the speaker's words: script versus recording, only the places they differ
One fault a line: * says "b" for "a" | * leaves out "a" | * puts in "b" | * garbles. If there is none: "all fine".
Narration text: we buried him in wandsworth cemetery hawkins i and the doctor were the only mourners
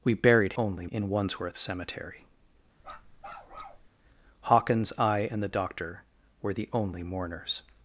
* says "only" for "him"